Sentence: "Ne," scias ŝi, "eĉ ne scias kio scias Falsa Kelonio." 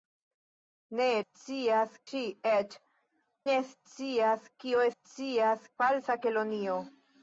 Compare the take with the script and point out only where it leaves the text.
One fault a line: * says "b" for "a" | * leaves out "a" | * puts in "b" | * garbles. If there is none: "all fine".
all fine